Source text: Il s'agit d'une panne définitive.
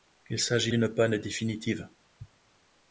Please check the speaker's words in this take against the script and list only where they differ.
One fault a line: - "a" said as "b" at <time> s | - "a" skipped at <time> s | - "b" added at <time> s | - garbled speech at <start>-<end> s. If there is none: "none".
none